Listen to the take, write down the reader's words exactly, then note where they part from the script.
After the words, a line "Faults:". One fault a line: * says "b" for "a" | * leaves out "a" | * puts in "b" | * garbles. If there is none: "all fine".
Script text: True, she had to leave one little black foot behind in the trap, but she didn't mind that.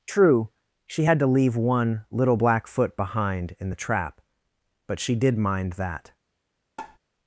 True, she had to leave one little black foot behind in the trap, but she did mind that.
Faults:
* says "did" for "didn't"